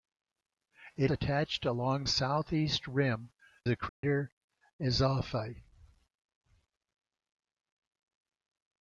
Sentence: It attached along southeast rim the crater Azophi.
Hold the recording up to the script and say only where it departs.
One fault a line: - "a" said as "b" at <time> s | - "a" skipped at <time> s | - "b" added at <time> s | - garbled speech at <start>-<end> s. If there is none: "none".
none